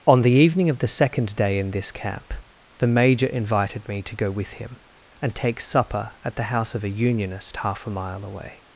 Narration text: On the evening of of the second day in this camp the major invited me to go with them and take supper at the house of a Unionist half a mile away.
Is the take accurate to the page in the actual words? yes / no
no